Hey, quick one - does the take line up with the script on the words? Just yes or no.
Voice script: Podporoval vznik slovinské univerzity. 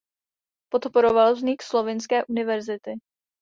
yes